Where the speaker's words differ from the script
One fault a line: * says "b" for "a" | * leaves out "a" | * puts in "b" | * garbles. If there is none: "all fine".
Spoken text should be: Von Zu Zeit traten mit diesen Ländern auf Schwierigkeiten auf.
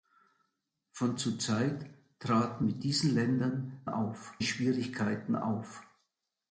all fine